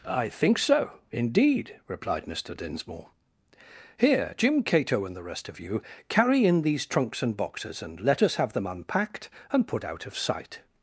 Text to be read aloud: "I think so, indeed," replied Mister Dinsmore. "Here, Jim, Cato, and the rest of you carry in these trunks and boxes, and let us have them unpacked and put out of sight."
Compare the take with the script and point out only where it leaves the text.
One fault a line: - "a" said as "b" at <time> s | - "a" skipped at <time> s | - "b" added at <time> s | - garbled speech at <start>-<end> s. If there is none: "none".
none